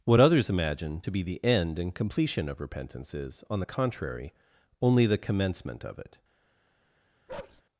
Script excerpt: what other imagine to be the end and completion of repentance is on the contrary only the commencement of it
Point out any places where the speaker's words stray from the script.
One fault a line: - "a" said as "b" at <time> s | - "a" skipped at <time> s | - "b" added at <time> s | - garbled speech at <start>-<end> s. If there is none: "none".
- "other" said as "others" at 0.2 s